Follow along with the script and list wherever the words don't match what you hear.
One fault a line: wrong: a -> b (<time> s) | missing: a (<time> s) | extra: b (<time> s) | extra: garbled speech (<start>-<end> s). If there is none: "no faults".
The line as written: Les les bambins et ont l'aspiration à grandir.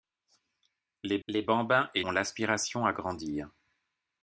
no faults